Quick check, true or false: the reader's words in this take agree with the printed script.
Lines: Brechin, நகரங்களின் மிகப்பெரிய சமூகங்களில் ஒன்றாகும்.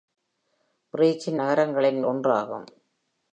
false